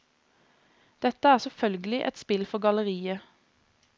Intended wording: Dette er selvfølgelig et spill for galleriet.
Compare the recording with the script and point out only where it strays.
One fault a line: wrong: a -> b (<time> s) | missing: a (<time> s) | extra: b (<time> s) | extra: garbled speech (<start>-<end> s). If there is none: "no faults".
no faults